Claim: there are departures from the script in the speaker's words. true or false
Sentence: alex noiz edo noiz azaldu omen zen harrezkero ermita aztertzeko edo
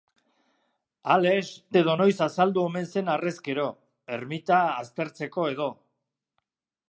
true